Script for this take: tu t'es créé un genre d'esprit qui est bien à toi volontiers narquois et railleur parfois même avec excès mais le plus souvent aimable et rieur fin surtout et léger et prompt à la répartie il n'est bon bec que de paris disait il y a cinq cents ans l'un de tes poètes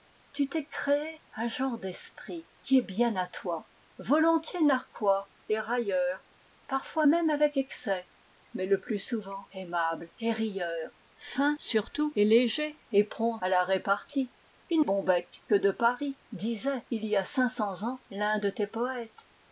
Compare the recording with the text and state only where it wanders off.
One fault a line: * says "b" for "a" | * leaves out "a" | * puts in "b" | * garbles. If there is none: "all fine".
* leaves out "n'est"